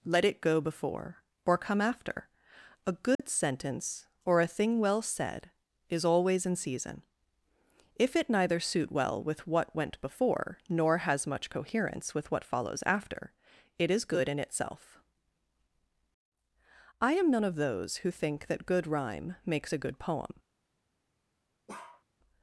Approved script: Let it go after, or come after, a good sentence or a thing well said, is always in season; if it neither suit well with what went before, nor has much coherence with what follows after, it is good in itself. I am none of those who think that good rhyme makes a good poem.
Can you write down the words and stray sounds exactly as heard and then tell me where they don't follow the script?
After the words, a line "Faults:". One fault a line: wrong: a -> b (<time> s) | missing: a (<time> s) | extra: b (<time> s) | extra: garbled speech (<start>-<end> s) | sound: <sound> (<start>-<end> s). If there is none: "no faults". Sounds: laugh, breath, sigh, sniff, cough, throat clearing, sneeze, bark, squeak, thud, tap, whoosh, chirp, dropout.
Let it go before, or come after, a good sentence or a thing well said, is always in season; if it neither suit well with what went before, nor has much coherence with what follows after, it is good in itself. I am none of those who think that good rhyme makes a good poem.
Faults:
wrong: after -> before (0.6 s)
sound: dropout (3.1-3.2 s)
sound: bark (21.7-22.0 s)